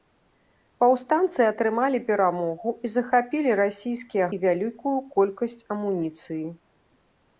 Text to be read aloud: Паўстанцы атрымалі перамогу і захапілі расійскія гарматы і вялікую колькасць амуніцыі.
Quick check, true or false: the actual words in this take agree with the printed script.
false